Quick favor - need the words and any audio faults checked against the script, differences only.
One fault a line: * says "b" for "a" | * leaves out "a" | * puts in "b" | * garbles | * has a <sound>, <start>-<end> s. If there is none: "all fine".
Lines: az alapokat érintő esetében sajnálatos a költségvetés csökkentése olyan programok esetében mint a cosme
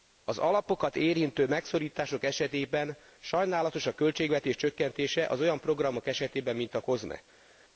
* puts in "megszorítások"
* puts in "az"